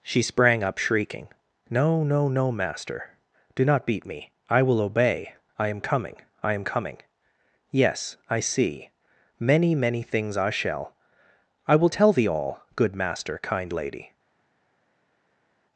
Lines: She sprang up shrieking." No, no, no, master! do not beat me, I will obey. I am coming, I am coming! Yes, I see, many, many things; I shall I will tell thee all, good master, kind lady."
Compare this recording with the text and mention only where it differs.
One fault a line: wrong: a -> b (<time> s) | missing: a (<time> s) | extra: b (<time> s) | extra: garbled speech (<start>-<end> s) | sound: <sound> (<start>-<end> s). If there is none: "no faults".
no faults